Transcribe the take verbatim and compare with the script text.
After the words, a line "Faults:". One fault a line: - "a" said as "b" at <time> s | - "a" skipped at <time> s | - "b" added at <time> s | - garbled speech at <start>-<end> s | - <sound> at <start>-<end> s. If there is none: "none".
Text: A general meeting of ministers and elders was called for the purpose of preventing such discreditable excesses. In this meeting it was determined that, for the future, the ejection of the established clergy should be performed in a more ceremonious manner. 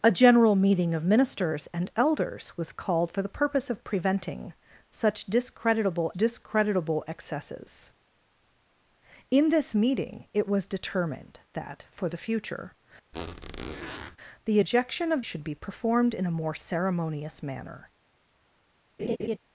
A general meeting of ministers and elders was called for the purpose of preventing such discreditable discreditable excesses. In this meeting it was determined that, for the future, the ejection of should be performed in a more ceremonious manner.
Faults:
- "discreditable" added at 6.1 s
- squeak at 13.1-14.2 s
- "the established clergy" skipped at 15.2 s
- laugh at 19.0-19.4 s